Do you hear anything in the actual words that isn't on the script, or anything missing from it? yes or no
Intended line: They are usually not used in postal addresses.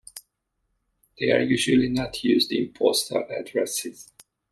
no